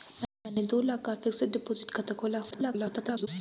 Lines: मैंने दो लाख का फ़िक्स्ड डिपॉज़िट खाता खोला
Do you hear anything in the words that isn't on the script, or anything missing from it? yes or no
yes